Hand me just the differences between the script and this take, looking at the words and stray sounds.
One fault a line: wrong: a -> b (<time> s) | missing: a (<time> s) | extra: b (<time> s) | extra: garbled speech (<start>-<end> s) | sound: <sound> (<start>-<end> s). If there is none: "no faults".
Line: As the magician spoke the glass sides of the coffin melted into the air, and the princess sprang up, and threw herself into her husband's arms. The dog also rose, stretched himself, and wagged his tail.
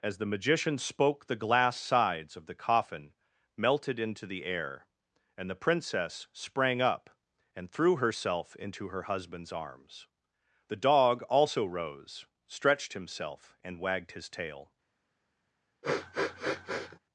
sound: sniff (15.8-17.0 s)